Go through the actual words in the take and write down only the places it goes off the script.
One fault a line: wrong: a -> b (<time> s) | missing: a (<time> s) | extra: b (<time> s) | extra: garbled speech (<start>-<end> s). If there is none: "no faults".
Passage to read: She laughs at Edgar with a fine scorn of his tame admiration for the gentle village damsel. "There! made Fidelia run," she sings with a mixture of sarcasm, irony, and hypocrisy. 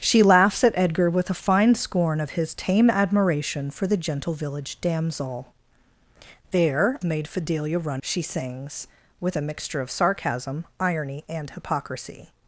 no faults